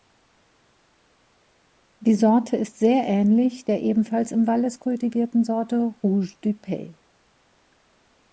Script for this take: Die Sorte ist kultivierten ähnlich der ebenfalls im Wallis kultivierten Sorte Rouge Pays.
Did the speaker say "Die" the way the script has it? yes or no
yes